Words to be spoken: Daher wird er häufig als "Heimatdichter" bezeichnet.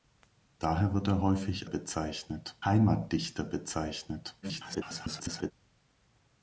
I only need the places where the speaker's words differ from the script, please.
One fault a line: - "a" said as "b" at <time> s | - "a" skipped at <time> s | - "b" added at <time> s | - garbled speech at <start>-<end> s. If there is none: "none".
- "als" said as "bezeichnet" at 1.6 s
- garbled speech at 4.4-5.5 s